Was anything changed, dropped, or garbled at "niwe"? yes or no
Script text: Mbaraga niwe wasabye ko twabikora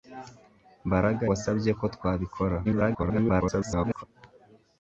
yes